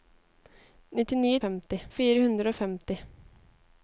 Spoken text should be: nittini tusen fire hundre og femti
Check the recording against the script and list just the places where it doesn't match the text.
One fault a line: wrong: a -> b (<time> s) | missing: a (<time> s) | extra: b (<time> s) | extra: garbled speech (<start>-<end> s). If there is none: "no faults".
wrong: tusen -> femti (1.4 s)